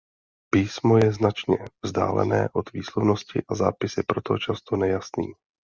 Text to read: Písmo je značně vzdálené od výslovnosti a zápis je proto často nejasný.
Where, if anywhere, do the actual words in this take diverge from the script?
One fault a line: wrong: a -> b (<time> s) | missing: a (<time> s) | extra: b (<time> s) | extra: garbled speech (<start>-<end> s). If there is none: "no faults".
no faults